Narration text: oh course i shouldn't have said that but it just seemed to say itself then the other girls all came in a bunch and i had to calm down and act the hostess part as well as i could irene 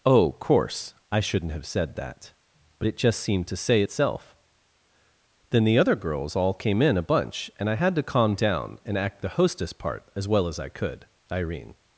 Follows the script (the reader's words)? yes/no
yes